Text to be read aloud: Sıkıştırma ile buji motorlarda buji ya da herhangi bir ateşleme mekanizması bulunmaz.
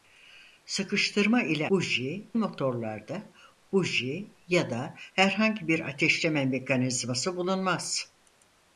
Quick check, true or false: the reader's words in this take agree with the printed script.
true